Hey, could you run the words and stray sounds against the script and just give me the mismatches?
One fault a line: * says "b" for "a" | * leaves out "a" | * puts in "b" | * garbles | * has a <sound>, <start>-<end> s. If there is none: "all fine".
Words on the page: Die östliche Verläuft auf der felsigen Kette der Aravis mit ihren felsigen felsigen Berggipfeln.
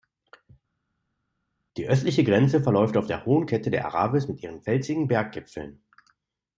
* puts in "Grenze"
* says "hohen" for "felsigen"
* leaves out "felsigen"